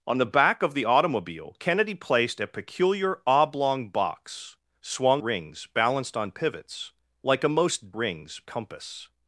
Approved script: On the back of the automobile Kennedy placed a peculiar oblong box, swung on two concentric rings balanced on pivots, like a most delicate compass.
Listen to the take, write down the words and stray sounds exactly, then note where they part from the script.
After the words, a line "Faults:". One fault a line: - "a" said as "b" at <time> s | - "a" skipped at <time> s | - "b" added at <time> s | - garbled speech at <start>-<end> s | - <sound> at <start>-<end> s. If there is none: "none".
On the back of the automobile Kennedy placed a peculiar oblong box, swung rings balanced on pivots, like a most rings compass.
Faults:
- "on two concentric" skipped at 5.2 s
- "delicate" said as "rings" at 7.9 s